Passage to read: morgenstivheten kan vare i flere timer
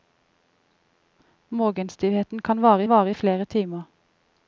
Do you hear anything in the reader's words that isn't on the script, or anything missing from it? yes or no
yes